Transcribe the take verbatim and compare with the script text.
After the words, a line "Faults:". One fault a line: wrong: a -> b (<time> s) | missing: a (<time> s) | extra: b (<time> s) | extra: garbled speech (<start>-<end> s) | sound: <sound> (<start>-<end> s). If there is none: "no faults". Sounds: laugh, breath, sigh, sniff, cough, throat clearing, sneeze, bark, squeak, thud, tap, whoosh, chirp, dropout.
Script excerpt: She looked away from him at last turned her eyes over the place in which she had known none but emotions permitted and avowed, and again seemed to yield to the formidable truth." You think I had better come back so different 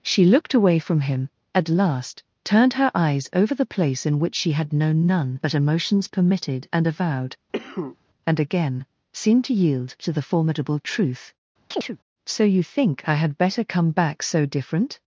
She looked away from him at last turned her eyes over the place in which she had known none but emotions permitted and avowed, and again seemed to yield to the formidable truth." So you think I had better come back so different
Faults:
sound: cough (7.5-8.0 s)
sound: chirp (11.7-12.0 s)
extra: So (12.2 s)